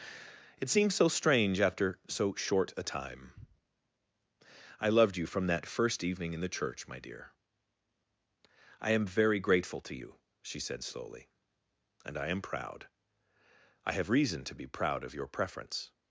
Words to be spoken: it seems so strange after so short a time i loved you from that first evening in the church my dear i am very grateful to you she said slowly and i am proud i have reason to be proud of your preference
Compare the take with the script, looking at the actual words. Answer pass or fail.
pass